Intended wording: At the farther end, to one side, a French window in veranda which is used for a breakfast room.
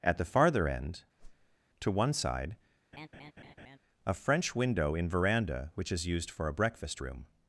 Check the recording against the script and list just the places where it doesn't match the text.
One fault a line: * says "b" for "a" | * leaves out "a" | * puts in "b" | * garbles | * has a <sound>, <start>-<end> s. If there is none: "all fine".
* has a whoosh, 1.2-1.6 s
* has a laugh, 2.9-3.8 s